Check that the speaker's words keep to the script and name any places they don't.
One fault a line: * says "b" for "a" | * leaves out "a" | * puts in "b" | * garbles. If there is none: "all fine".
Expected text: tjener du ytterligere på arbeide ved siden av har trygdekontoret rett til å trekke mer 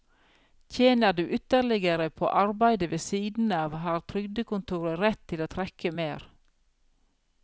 all fine